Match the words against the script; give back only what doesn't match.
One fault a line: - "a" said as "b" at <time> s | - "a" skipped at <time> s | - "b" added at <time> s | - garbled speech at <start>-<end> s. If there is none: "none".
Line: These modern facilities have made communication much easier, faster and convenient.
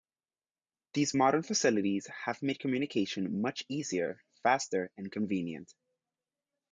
none